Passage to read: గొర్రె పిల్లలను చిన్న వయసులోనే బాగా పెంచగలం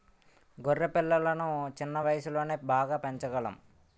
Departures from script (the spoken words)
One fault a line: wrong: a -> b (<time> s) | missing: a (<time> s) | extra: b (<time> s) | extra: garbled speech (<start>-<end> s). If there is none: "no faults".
no faults